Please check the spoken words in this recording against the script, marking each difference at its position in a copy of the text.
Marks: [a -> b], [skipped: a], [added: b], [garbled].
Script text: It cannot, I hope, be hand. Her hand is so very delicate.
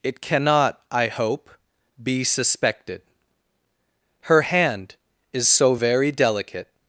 It cannot, I hope, be [hand. -> suspected] Her hand is so very delicate.